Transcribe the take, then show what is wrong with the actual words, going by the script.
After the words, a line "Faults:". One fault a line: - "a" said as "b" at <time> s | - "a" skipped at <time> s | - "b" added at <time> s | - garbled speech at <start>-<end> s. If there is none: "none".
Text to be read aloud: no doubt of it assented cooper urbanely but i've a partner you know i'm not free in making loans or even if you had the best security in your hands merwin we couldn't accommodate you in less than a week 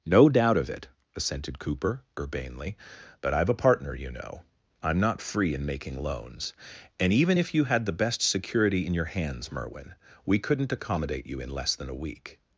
no doubt of it assented cooper urbanely but i've a partner you know i'm not free in making loans and even if you had the best security in your hands merwin we couldn't accommodate you in less than a week
Faults:
- "or" said as "and" at 7.0 s